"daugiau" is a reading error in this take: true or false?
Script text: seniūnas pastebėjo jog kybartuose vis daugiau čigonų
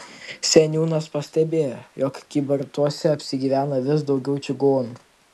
false